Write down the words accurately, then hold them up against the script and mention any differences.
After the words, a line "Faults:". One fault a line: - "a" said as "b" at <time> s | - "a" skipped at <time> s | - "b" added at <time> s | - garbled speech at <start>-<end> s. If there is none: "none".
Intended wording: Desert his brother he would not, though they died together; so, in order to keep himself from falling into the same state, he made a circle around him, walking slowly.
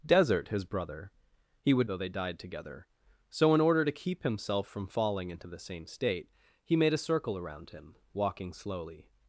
Desert his brother he would though they died together; so, in order to keep himself from falling into the same state, he made a circle around him, walking slowly.
Faults:
- "not" skipped at 1.9 s